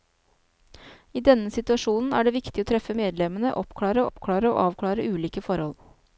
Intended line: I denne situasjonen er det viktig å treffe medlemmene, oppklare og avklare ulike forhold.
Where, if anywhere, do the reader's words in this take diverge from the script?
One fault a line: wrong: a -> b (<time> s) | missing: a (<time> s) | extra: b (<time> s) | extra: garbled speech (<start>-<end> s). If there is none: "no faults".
extra: oppklare (4.1 s)